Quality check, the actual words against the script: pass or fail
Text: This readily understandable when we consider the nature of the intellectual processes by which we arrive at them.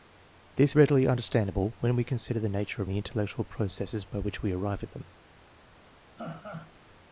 pass